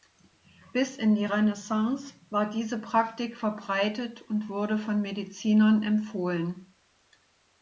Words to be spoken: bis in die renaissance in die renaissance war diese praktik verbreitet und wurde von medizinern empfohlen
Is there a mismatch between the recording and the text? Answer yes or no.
yes